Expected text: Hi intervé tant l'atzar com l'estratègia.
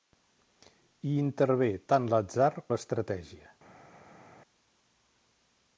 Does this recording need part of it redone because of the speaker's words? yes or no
yes